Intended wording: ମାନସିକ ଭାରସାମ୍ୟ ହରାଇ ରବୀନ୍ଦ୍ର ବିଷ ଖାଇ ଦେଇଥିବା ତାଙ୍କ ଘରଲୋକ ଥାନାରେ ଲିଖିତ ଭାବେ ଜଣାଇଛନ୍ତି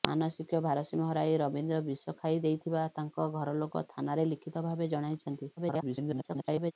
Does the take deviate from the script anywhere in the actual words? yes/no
yes